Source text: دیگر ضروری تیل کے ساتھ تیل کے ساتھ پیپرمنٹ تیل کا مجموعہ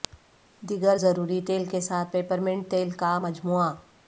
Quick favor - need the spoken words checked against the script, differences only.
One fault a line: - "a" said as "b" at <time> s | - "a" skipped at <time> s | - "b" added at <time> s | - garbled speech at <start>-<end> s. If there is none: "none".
- "تیل کے ساتھ" skipped at 2.1 s